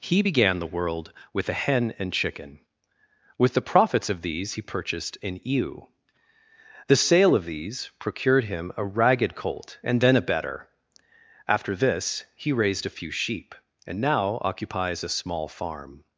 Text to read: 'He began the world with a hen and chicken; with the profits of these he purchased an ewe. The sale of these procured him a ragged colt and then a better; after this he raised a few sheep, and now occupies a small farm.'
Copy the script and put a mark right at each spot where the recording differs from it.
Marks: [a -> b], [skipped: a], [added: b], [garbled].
'He began the world with a hen and chicken; with the profits of these he purchased an ewe. The sale of these procured him a ragged colt and then a better; after this he raised a few sheep, and now occupies a small farm.'